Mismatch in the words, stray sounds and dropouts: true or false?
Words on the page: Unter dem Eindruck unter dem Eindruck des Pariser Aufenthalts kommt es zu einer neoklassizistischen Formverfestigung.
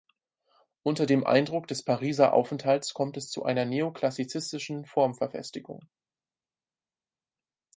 true